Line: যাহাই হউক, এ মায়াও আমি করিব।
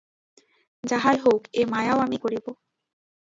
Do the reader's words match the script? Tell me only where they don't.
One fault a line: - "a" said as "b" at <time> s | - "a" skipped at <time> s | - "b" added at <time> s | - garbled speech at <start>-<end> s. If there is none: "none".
none